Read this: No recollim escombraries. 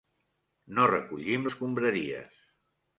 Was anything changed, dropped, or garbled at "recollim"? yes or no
no